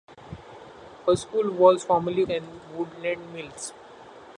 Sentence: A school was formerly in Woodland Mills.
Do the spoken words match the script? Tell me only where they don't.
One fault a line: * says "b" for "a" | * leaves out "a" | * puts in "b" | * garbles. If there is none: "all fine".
all fine